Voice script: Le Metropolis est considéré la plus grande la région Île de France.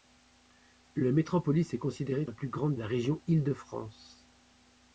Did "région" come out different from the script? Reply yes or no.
no